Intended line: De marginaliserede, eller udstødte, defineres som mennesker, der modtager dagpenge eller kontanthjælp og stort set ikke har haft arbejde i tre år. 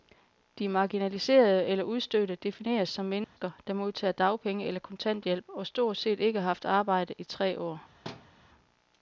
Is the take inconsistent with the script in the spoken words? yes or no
no